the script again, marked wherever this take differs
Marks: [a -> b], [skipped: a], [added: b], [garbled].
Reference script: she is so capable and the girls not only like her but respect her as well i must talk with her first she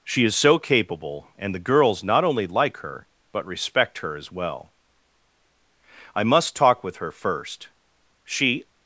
she is so capable and the girls not only like her but respect her as well i must talk with her first she